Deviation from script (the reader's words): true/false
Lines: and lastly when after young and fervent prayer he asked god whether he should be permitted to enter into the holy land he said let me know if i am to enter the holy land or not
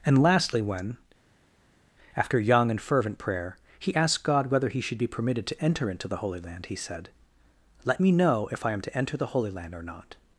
false